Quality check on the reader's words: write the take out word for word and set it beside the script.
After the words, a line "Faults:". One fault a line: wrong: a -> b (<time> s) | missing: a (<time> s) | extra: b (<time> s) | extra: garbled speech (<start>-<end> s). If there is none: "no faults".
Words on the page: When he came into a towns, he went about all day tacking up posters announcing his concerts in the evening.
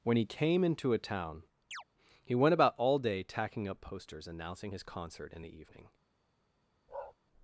When he came into a town, he went about all day tacking up posters announcing his concert in the evening.
Faults:
wrong: towns -> town (1.0 s)
wrong: concerts -> concert (4.8 s)